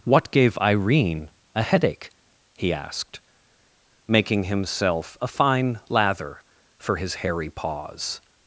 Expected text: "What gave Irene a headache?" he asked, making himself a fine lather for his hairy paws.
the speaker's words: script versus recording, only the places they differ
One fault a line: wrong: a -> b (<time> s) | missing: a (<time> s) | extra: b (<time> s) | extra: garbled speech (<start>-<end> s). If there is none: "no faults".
no faults